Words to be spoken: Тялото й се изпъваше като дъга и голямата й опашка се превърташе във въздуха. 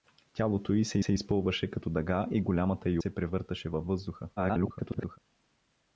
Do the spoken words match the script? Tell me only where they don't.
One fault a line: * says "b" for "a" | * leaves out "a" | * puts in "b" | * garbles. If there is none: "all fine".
* puts in "се"
* leaves out "опашка"
* garbles